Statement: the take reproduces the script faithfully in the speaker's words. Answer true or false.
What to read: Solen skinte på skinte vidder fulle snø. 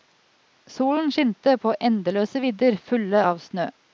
false